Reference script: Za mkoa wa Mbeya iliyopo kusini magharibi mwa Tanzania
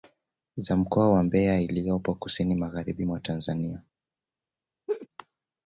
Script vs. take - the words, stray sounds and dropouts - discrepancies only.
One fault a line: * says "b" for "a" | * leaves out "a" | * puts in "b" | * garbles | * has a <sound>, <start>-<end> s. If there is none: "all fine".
* has a laugh, 4.9-5.1 s